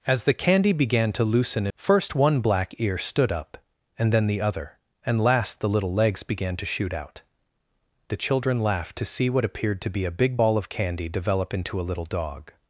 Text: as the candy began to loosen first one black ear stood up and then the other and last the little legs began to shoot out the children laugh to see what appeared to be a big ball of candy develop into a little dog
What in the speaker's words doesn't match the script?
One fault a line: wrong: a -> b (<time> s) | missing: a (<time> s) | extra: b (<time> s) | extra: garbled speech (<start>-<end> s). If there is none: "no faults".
no faults